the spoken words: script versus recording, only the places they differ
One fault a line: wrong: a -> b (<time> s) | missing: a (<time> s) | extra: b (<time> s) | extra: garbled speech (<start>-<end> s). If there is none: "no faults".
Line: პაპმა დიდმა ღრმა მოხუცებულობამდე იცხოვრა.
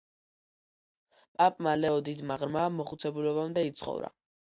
extra: ლეო (1.8 s)